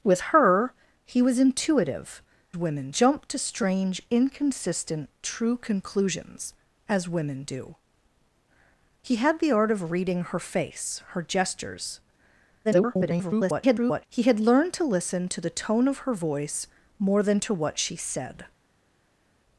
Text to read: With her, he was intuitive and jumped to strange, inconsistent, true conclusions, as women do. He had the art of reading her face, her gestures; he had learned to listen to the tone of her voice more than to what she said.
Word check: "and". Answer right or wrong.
wrong